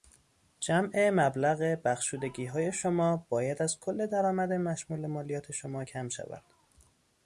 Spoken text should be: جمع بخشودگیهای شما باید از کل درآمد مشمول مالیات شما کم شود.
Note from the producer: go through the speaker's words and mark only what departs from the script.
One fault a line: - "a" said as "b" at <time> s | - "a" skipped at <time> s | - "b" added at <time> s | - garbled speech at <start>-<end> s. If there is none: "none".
- "مبلغ" added at 1.1 s